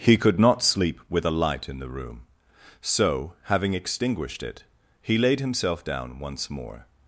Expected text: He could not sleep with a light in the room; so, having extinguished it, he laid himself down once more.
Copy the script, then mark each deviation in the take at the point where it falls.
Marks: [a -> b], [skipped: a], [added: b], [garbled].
He could not sleep with a light in the room; so, having extinguished it, he laid himself down once more.